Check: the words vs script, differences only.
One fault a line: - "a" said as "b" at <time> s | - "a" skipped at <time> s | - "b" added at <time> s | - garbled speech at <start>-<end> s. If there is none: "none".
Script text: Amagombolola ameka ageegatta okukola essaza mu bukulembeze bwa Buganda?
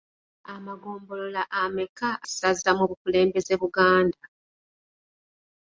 - "ageegatta okukola" skipped at 2.1 s
- "bwa" skipped at 3.5 s